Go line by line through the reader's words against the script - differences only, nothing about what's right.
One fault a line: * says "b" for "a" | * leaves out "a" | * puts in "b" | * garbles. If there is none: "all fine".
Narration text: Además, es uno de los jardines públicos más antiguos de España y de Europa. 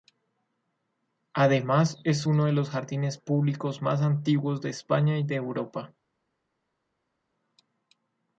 all fine